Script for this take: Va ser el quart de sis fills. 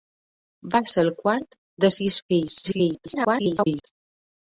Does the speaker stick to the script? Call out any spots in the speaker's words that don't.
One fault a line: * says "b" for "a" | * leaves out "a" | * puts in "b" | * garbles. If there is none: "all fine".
* garbles